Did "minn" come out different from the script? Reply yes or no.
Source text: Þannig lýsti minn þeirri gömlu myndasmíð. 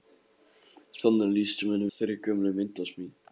no